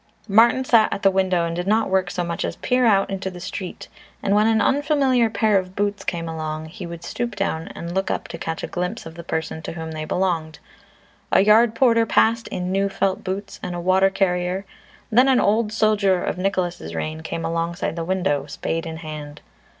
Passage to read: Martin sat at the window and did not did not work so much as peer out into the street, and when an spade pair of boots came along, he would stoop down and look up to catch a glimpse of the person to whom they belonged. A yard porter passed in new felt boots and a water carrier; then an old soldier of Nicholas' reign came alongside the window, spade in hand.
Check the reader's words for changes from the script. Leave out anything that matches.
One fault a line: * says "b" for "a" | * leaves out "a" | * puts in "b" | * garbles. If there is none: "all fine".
* leaves out "did not"
* says "unfamiliar" for "spade"